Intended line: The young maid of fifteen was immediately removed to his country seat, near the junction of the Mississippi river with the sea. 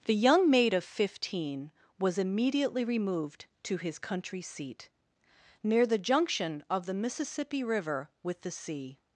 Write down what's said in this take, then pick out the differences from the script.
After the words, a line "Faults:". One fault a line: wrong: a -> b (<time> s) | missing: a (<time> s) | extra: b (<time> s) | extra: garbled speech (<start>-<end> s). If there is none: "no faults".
The young maid of fifteen was immediately removed to his country seat, near the junction of the Mississippi river with the sea.
Faults:
no faults